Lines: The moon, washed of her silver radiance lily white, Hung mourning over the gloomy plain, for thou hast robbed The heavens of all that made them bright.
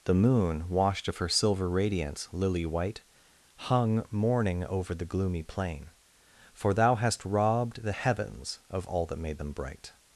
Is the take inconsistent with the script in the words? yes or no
no